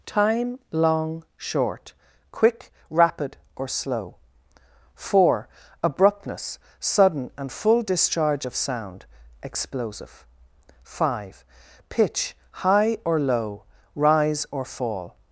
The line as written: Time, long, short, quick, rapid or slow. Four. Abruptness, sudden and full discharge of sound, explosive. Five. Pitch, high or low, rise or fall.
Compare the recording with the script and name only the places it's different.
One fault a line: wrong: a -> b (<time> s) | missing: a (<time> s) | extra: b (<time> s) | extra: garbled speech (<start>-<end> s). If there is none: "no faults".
no faults